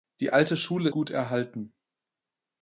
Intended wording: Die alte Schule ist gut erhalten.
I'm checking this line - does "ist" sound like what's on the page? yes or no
no